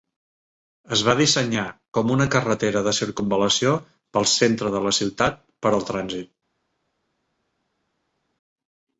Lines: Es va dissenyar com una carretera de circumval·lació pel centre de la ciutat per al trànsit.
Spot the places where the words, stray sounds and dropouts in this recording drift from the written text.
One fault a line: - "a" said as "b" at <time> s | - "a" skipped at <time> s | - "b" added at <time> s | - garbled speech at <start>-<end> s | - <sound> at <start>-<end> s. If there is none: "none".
none